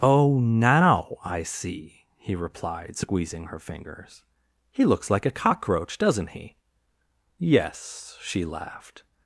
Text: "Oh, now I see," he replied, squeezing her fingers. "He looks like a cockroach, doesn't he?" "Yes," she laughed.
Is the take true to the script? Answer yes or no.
yes